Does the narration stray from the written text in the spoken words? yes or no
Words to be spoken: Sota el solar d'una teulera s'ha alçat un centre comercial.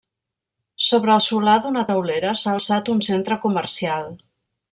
yes